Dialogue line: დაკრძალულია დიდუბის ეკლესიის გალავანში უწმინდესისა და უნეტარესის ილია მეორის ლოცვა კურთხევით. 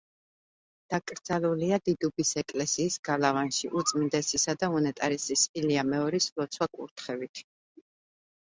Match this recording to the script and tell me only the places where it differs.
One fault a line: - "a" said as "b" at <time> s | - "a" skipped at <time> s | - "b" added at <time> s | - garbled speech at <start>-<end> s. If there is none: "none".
none